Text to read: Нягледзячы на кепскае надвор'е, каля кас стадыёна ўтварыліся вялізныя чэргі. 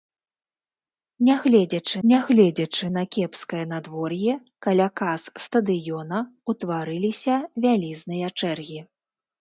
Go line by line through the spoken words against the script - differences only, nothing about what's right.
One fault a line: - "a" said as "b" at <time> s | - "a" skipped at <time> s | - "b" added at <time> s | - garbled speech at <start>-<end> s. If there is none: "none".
- "нягледзячы" added at 2.1 s